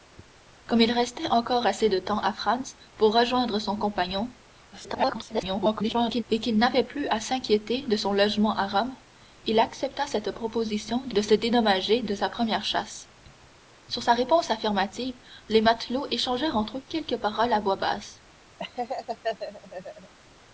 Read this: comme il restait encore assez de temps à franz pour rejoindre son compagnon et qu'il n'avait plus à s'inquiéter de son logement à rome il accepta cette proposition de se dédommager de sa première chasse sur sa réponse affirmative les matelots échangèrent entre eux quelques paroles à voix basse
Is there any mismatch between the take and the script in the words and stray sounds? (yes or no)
yes